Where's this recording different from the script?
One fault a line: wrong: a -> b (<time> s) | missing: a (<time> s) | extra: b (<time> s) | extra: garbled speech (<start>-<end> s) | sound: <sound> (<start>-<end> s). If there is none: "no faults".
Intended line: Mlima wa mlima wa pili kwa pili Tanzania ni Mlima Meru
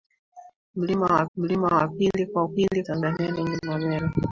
no faults